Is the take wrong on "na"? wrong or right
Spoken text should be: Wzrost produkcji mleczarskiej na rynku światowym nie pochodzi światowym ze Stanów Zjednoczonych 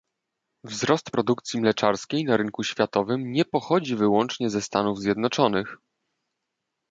right